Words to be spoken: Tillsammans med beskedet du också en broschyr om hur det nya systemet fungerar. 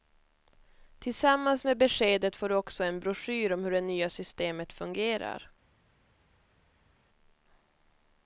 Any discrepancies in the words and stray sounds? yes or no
yes